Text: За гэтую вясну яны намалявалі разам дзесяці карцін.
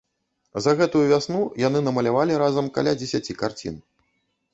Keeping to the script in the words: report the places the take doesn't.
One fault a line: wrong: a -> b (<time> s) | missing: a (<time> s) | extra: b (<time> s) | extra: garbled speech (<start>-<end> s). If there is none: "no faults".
extra: каля (2.8 s)